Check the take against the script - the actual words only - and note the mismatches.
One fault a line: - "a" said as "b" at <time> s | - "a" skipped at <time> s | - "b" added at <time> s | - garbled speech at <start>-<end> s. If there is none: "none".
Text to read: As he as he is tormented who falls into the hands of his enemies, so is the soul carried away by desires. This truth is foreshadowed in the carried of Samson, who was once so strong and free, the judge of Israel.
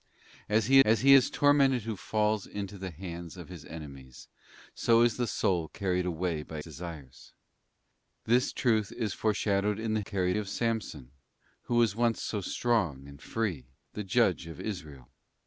none